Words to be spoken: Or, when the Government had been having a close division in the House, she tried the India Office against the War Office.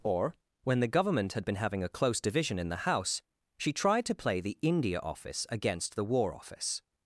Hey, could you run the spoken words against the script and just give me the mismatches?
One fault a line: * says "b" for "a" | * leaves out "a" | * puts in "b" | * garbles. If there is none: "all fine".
* puts in "to play"